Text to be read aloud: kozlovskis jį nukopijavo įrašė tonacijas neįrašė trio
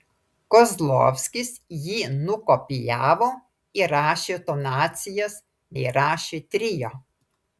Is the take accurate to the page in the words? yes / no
yes